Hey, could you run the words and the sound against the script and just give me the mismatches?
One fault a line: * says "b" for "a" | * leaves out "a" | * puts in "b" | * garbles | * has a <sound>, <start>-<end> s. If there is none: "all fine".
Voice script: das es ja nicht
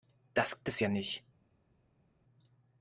all fine